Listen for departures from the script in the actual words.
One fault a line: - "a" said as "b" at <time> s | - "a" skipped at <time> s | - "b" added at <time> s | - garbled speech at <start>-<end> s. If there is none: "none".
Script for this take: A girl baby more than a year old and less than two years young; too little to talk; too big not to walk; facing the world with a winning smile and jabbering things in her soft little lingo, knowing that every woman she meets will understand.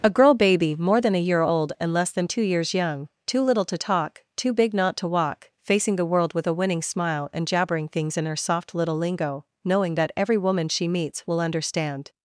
none